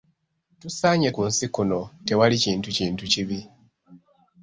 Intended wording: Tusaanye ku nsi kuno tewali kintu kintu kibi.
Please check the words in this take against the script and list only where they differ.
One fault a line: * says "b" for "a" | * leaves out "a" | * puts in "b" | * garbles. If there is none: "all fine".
all fine